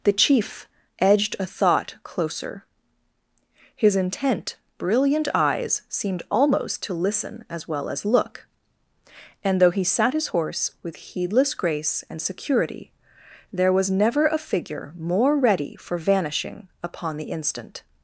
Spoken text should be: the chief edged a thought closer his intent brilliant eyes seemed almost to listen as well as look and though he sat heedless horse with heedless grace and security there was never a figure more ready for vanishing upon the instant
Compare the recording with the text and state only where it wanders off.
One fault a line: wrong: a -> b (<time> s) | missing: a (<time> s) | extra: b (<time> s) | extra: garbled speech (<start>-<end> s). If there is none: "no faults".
wrong: heedless -> his (10.1 s)